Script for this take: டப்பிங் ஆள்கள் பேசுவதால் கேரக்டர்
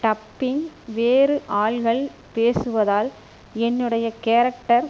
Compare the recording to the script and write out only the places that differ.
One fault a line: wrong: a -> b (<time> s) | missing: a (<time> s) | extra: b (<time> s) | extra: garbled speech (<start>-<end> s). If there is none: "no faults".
extra: வேறு (0.9 s)
extra: என்னுடைய (3.6 s)